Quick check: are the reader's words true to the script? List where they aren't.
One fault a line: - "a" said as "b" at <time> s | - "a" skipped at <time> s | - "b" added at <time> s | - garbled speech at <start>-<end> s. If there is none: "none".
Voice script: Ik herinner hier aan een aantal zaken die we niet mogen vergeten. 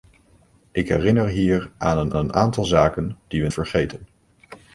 - "een" added at 2.2 s
- "niet mogen" skipped at 3.5 s